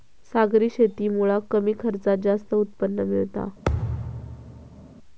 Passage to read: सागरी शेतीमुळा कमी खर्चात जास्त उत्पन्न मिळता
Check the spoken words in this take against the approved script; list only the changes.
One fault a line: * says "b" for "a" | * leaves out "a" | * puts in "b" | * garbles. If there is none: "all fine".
all fine